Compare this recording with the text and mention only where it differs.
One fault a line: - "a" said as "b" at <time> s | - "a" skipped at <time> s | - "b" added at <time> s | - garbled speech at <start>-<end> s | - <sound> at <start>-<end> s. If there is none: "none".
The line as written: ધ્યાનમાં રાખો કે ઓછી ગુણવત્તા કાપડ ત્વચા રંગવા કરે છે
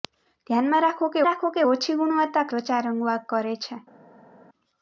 - "રાખો કે" added at 1.3 s
- "કાપડ" skipped at 2.5 s